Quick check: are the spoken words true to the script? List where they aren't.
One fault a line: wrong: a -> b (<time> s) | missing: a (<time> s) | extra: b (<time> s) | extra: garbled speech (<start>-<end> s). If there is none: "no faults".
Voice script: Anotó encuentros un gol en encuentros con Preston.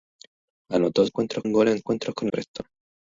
no faults